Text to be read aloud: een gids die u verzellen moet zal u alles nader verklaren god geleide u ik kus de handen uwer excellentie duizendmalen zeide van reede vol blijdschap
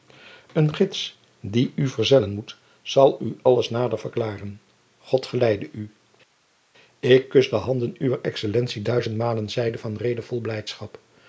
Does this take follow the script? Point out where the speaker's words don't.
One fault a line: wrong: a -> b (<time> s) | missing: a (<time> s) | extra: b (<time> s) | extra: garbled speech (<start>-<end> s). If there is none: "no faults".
no faults